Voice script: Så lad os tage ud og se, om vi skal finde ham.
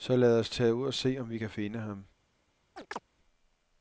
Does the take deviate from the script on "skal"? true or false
true